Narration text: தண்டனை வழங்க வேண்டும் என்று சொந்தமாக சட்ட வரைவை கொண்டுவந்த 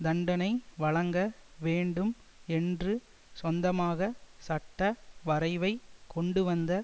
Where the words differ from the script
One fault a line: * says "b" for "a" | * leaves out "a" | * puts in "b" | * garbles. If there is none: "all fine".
all fine